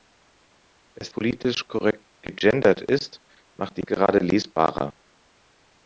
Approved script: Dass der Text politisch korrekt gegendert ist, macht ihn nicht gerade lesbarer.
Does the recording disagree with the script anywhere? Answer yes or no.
yes